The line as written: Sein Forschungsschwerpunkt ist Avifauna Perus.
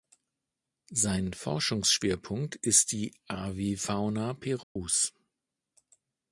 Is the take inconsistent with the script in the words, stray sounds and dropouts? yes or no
yes